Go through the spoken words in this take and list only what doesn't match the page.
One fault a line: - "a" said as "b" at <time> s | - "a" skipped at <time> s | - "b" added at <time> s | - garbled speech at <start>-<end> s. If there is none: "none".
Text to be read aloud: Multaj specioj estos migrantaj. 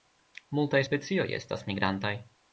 - "estos" said as "estas" at 1.4 s